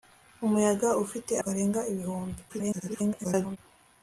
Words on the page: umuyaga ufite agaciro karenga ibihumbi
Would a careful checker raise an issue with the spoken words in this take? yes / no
yes